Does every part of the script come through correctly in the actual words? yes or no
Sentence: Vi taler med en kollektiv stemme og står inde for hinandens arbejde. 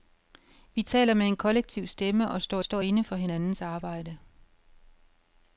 no